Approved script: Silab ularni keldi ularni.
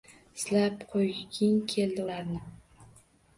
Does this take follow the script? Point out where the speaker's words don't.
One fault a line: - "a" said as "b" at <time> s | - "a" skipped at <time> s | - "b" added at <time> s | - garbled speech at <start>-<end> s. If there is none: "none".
- "ularni" said as "qo'yging" at 0.9 s